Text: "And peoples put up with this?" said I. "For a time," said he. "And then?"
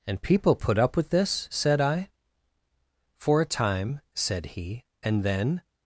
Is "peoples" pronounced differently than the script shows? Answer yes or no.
yes